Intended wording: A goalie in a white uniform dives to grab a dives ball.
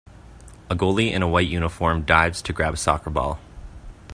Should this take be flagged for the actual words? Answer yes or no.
yes